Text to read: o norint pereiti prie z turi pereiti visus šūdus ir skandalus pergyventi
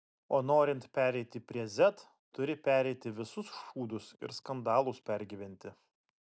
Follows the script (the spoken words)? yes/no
yes